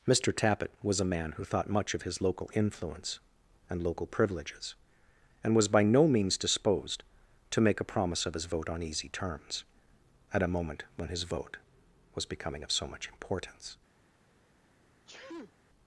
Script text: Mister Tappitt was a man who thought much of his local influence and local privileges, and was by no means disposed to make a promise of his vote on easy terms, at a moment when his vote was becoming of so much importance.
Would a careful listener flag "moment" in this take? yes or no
no